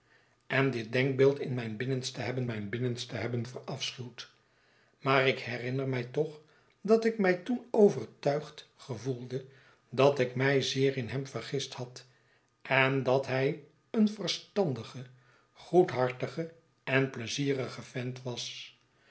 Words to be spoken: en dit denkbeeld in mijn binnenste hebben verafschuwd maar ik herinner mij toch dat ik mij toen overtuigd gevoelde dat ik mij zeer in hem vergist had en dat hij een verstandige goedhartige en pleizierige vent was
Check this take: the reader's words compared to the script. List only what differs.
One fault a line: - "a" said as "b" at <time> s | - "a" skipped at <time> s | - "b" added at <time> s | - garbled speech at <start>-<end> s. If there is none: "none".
- "mijn binnenste hebben" added at 2.4 s